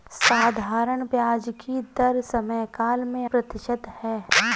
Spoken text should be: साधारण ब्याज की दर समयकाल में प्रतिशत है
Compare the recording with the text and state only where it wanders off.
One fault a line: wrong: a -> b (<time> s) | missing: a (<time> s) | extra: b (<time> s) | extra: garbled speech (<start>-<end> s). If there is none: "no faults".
no faults